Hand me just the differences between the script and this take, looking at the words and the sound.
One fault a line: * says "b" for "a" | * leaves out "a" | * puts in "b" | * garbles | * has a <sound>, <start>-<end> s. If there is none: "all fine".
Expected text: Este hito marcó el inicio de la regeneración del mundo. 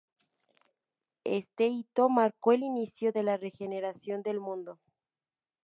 all fine